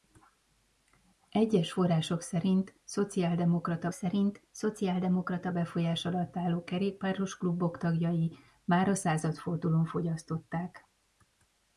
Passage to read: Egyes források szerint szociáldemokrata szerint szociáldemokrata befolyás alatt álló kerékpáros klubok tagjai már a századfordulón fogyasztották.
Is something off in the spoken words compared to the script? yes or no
no